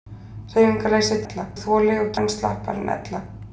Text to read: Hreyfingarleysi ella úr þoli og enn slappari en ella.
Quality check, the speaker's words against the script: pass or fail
pass